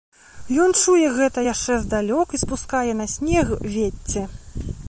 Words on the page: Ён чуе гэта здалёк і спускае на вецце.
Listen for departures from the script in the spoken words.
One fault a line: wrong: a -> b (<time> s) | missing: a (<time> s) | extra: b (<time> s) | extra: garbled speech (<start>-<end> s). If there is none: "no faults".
extra: яшчэ (1.4 s)
extra: снег (3.1 s)